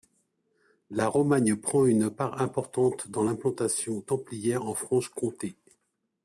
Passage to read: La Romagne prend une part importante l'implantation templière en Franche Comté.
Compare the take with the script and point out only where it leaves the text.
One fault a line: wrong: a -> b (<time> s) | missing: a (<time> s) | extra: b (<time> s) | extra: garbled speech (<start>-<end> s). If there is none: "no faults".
extra: dans (3.1 s)